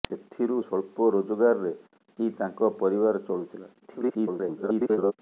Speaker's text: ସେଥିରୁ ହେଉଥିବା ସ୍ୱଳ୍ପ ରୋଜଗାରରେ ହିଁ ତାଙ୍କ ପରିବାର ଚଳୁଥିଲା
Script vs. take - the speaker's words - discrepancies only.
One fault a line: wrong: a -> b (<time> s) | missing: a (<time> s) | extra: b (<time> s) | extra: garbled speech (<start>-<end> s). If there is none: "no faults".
missing: ହେଉଥିବା (0.6 s)
extra: garbled speech (3.8-5.1 s)